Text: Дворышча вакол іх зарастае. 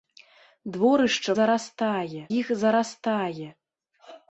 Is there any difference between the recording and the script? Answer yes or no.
yes